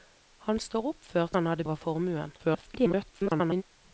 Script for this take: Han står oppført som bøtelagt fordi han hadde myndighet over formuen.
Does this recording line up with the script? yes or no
no